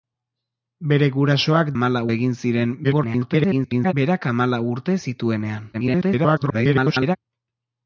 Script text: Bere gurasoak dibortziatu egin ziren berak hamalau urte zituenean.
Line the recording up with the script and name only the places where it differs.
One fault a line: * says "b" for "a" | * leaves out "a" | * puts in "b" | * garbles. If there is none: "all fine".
* says "hamalau" for "dibortziatu"
* garbles
* garbles